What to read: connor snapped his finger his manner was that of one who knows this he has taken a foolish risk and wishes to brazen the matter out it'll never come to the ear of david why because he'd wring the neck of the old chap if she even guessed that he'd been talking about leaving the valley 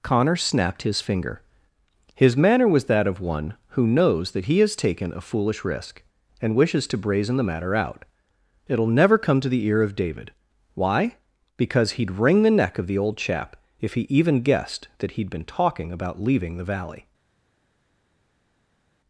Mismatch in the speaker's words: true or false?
true